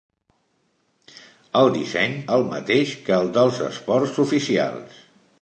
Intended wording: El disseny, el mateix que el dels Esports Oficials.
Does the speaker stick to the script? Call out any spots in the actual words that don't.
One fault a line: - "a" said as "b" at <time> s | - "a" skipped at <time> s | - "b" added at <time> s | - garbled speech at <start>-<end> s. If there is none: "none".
none